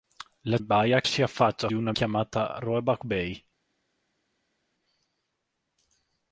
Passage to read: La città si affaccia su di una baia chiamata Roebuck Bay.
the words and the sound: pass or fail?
fail